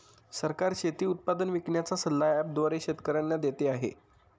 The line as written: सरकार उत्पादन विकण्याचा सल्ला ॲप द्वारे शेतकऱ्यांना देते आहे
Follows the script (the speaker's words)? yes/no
no